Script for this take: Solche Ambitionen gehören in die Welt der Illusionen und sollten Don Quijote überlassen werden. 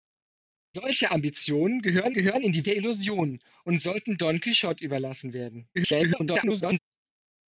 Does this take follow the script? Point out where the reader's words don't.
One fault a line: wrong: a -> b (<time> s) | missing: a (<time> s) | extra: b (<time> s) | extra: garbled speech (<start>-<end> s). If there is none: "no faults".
extra: gehören (2.1 s)
missing: Welt (2.7 s)
extra: garbled speech (5.7-6.8 s)